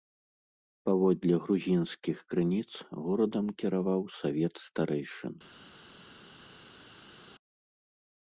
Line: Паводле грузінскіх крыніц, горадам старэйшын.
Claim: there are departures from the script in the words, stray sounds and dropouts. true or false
true